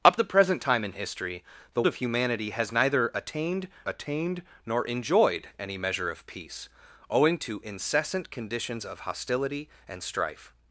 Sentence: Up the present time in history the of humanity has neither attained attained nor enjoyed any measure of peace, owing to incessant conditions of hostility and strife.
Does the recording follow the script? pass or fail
pass